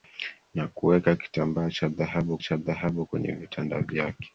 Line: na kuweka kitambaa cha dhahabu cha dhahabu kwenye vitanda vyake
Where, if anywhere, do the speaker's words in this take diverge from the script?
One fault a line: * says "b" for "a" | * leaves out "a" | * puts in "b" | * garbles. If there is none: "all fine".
all fine